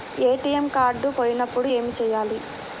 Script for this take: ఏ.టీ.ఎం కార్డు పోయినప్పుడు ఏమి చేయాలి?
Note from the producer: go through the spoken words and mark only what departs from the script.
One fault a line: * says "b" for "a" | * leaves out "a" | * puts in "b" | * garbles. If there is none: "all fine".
all fine